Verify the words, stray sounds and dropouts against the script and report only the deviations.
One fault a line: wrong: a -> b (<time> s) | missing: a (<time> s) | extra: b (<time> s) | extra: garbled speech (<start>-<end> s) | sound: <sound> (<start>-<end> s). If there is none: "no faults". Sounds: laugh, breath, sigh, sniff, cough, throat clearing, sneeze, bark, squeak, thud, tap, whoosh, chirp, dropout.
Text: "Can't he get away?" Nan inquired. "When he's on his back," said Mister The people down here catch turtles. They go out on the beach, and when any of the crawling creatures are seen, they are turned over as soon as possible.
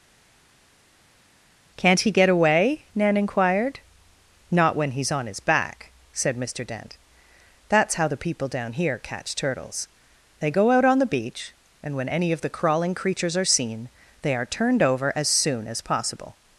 extra: Not (4.5 s)
extra: Dent That's how (6.6 s)